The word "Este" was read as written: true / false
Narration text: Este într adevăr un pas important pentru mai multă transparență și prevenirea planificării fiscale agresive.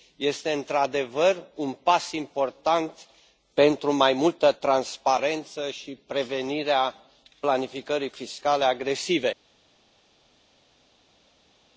true